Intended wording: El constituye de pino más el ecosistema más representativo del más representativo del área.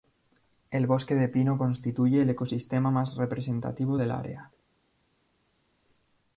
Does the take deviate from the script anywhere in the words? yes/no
yes